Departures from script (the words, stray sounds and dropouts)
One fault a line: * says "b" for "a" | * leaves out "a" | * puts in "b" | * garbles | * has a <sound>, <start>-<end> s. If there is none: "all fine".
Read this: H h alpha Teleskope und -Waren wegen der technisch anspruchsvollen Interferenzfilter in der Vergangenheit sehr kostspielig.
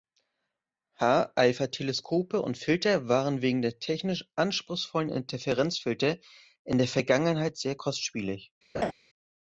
* leaves out "h"
* puts in "Filter"
* has a laugh, 8.7-8.9 s